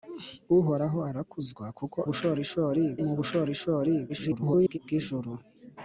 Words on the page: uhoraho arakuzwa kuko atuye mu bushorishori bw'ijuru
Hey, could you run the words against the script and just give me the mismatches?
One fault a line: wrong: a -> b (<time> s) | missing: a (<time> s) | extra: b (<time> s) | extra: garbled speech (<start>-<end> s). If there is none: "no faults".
wrong: atuye -> bushorishori (2.1 s)
extra: garbled speech (4.1-4.8 s)